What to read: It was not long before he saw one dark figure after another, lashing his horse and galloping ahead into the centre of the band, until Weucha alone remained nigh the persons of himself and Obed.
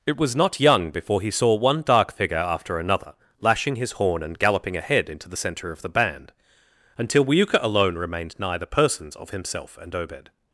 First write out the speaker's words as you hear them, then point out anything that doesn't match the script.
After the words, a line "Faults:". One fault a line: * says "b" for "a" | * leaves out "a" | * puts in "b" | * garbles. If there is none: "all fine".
It was not young before he saw one dark figure after another, lashing his horn and galloping ahead into the centre of the band, until Weucha alone remained nigh the persons of himself and Obed.
Faults:
* says "young" for "long"
* says "horn" for "horse"